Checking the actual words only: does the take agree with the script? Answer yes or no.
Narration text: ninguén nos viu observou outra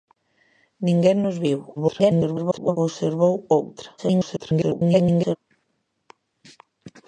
no